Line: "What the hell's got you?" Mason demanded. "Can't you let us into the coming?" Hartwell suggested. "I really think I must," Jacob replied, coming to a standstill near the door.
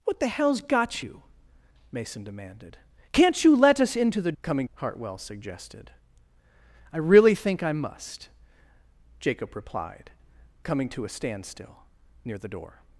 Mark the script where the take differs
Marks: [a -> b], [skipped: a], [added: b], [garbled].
"What the hell's got you?" Mason demanded. "Can't you let us into the coming?" Hartwell suggested. "I really think I must," Jacob replied, coming to a standstill near the door.